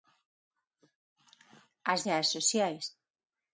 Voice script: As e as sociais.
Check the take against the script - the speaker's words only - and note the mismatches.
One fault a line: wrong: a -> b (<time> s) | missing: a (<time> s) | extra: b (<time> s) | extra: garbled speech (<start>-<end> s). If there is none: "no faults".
no faults